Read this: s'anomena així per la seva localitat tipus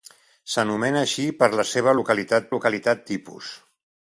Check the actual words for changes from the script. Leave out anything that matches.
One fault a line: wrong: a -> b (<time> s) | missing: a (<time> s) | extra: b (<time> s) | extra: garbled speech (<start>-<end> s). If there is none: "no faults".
extra: localitat (2.5 s)